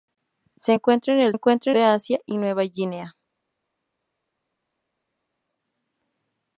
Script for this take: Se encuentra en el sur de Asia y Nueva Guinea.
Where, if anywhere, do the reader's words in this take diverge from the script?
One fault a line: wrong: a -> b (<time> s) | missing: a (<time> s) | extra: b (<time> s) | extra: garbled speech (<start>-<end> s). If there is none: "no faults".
wrong: sur -> encuentra (1.3 s)